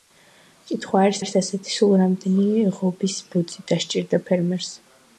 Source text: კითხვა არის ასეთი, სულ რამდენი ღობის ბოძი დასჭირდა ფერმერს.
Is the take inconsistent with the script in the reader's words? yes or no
yes